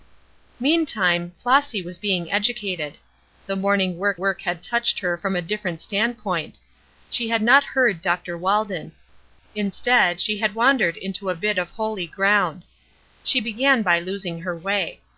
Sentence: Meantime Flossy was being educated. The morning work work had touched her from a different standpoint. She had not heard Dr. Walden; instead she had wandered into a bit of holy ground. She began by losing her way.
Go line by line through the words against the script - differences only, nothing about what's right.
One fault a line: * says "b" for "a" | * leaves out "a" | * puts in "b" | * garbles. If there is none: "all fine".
all fine